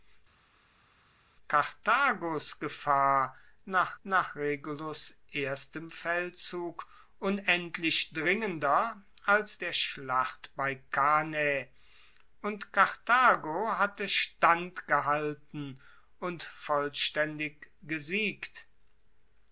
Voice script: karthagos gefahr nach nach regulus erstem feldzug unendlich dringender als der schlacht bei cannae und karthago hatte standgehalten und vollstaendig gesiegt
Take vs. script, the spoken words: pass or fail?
pass